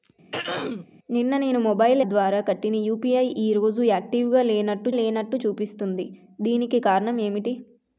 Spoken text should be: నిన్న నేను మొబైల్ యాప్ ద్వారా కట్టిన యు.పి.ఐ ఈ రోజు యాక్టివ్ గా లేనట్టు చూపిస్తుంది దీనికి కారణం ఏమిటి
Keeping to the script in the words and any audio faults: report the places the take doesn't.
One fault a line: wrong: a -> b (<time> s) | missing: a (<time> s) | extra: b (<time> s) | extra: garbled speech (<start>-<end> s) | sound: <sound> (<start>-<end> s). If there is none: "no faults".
sound: throat clearing (0.3-0.9 s)
missing: యాప్ (2.0 s)
extra: లేనట్టు (4.9 s)